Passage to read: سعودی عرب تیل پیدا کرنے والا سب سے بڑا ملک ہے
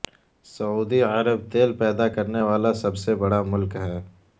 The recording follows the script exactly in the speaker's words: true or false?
true